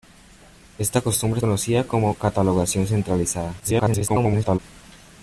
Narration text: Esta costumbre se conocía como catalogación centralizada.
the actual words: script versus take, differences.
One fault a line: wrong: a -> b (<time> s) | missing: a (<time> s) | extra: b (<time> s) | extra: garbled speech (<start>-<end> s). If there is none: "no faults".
missing: se (1.4 s)
extra: garbled speech (3.6-4.6 s)